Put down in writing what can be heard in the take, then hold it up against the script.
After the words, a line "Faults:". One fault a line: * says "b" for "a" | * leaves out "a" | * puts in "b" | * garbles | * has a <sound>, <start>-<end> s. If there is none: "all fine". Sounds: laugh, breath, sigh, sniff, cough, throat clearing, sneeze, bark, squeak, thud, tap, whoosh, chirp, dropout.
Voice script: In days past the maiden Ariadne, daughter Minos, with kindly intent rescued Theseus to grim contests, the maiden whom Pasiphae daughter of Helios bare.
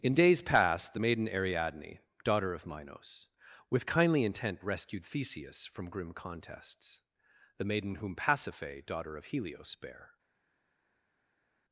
In days past the maiden Ariadne, daughter of Minos, with kindly intent rescued Theseus from grim contests, the maiden whom Pasiphae daughter of Helios bare.
Faults:
* puts in "of"
* says "from" for "to"